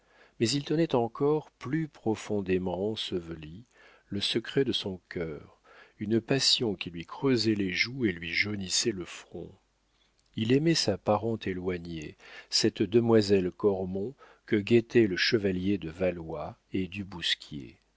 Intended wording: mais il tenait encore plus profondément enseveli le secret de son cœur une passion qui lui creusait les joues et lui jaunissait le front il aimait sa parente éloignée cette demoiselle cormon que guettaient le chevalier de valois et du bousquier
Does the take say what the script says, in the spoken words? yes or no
yes